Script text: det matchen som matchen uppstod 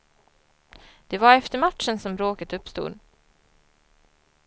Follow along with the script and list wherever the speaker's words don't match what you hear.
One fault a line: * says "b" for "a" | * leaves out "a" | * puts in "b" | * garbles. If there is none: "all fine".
* puts in "var efter"
* says "bråket" for "matchen"